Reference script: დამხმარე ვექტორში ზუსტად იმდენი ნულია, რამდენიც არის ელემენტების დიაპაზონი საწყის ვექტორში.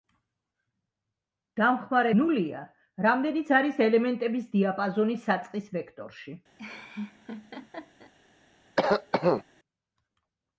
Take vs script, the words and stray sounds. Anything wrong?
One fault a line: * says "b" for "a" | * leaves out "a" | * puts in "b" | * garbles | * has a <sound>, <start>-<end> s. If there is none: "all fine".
* leaves out "ვექტორში ზუსტად იმდენი"
* has a laugh, 6.6-8.1 s
* has a cough, 8.8-9.4 s